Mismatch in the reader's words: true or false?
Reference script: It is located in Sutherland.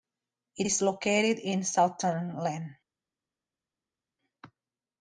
false